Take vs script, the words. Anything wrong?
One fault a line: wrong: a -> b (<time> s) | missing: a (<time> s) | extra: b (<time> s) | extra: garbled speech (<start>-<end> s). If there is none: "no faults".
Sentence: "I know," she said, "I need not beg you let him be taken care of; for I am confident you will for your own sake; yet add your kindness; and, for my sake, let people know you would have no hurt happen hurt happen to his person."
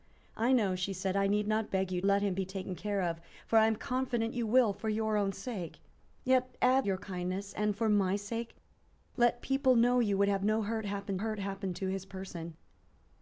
no faults